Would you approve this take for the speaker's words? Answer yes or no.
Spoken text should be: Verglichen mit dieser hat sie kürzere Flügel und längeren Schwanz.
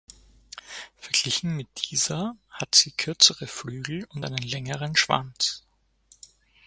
no